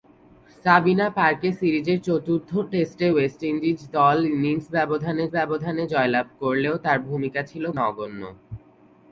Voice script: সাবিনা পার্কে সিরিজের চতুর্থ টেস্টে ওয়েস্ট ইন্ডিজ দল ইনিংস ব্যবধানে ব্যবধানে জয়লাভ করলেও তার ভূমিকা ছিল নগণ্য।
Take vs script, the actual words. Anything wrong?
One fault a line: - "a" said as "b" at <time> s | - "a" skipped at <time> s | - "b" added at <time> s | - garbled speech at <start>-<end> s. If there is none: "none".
none